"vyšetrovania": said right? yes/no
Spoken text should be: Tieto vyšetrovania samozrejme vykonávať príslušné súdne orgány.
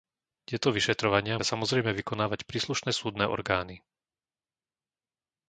yes